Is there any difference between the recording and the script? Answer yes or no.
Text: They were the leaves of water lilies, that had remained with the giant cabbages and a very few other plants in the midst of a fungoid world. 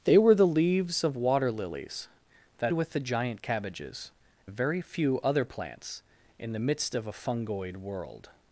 yes